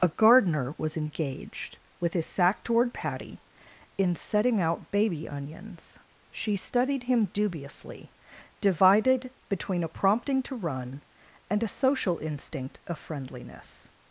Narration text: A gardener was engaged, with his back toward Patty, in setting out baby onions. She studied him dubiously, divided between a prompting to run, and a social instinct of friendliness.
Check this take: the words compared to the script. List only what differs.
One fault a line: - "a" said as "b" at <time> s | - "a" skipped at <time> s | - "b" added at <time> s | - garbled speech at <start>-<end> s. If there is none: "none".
- "back" said as "sack" at 2.2 s